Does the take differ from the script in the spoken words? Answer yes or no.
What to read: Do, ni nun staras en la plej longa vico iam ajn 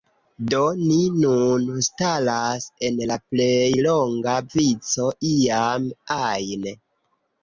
no